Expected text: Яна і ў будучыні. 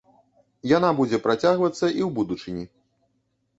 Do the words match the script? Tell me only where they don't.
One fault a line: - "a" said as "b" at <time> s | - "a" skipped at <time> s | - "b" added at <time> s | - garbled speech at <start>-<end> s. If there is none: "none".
- "будзе працягвацца" added at 1.0 s